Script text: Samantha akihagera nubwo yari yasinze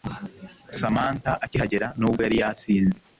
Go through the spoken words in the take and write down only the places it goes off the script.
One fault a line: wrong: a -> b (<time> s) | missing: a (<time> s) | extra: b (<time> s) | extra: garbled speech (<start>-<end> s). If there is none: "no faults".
no faults